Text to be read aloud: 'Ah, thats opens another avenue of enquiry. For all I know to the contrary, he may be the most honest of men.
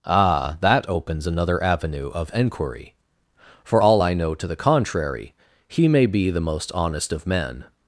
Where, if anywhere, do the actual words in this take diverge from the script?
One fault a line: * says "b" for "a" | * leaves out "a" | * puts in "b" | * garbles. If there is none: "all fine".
* says "that" for "thats"